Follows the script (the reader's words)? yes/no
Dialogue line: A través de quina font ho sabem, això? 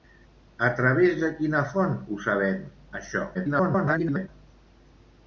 no